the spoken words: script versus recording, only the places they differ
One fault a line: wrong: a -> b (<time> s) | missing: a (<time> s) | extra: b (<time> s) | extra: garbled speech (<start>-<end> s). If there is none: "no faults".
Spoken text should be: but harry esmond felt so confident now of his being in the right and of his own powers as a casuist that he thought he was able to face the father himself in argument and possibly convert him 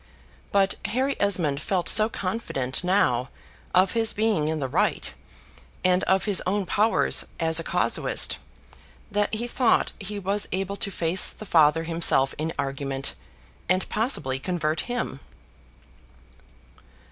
no faults